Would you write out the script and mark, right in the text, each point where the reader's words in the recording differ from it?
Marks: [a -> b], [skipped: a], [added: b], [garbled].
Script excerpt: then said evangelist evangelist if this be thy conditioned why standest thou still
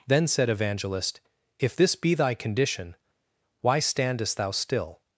then said evangelist [skipped: evangelist] if this be thy [conditioned -> condition] why standest thou still